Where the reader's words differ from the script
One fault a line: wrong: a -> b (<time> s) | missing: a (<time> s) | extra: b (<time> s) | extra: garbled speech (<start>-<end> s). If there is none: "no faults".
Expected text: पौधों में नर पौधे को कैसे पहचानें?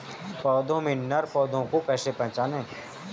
no faults